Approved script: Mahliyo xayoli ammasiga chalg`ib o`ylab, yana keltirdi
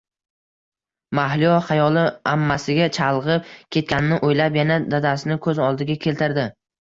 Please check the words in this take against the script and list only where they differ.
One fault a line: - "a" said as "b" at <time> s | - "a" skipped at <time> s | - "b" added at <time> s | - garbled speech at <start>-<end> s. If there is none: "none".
- "ketganini" added at 3.8 s
- "dadasini ko`z oldiga" added at 4.9 s